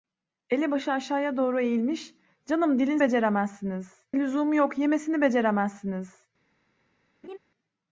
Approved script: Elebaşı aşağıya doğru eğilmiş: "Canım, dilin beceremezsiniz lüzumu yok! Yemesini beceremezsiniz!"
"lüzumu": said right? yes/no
yes